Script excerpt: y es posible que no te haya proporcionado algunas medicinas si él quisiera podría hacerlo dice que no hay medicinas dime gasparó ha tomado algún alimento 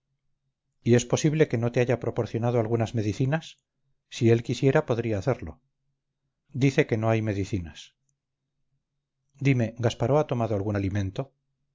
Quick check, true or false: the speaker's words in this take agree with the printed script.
true